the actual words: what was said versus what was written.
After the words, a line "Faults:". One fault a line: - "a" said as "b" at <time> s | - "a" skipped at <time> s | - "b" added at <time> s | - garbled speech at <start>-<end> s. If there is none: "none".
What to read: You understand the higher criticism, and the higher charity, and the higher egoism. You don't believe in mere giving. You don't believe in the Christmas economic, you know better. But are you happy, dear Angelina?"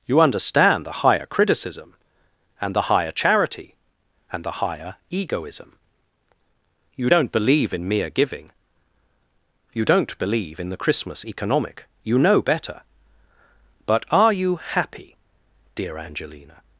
You understand the higher criticism, and the higher charity, and the higher egoism. You don't believe in mere giving. You don't believe in the Christmas economic, you know better. But are you happy, dear Angelina?"
Faults:
none